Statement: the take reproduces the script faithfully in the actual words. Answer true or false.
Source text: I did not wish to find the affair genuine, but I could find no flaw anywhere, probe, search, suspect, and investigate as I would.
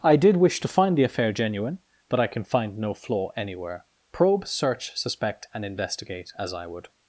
false